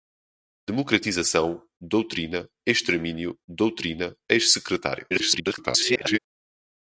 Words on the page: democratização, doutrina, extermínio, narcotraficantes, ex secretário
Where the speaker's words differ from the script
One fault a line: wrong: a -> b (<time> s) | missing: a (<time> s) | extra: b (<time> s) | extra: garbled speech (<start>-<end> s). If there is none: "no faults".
wrong: narcotraficantes -> doutrina (3.5 s)
extra: garbled speech (5.1-6.2 s)